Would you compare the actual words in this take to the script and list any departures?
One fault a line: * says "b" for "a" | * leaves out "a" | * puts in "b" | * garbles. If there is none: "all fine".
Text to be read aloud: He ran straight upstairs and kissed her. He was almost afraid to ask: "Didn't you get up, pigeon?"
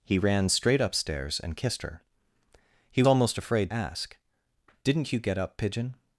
* leaves out "was"
* leaves out "to"